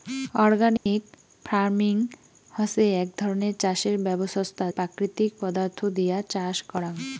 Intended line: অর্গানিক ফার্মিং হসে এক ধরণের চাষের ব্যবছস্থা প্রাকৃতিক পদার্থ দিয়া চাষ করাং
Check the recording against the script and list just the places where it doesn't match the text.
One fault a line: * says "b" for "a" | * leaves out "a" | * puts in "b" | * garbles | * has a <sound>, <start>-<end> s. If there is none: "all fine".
* has a dropout, 0.8-0.9 s